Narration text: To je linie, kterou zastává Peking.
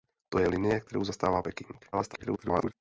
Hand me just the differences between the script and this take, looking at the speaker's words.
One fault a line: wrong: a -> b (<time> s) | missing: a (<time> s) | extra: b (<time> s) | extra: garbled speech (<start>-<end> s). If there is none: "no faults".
extra: garbled speech (1.9-2.7 s)